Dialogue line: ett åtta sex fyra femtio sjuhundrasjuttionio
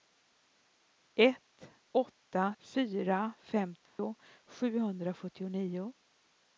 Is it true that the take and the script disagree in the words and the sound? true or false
true